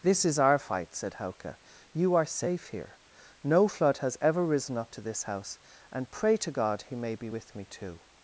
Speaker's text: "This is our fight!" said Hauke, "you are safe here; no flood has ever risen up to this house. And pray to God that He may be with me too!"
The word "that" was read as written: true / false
false